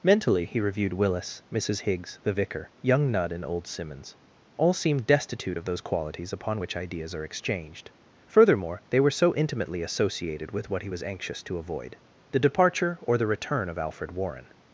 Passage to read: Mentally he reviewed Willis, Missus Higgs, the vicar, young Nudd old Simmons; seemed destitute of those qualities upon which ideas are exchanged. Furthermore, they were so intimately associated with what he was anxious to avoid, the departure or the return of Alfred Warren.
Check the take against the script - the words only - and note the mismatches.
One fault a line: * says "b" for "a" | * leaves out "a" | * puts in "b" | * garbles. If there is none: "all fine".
* puts in "and"
* puts in "all"